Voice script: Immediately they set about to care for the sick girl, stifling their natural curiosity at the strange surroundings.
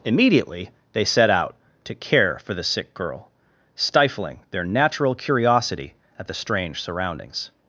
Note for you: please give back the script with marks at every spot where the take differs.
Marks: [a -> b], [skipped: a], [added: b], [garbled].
Immediately they set [about -> out] to care for the sick girl, stifling their natural curiosity at the strange surroundings.